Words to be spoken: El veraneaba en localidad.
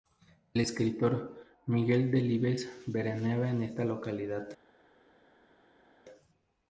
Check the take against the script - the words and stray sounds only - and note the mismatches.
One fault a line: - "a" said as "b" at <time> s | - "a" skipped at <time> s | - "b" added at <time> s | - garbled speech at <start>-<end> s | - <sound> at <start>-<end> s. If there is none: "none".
- "escritor Miguel Delibes" added at 0.6 s
- "esta" added at 3.6 s